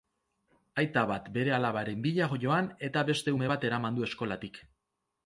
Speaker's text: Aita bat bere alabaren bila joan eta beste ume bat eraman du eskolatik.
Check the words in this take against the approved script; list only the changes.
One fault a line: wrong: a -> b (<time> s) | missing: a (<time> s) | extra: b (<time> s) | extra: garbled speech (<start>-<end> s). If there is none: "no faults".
no faults